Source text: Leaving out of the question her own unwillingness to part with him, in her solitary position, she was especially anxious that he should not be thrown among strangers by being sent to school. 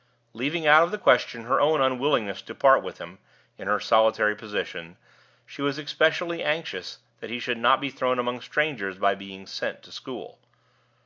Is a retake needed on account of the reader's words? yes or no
no